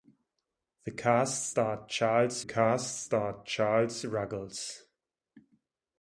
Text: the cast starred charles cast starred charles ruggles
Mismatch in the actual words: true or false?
false